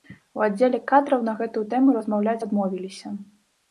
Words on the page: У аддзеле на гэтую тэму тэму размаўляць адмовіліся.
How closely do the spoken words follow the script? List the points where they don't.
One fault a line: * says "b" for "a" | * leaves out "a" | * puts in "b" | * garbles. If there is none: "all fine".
* puts in "кадраў"
* leaves out "тэму"